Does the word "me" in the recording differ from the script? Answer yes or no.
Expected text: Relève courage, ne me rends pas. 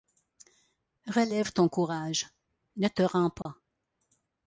yes